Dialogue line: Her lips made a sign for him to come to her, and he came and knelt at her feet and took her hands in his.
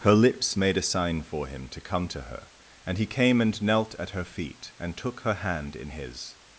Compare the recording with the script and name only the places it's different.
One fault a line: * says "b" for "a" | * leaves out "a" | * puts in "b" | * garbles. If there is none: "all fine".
* says "hand" for "hands"